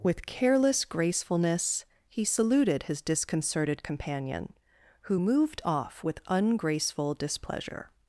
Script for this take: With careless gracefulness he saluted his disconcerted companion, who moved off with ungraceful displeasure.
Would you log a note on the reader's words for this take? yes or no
no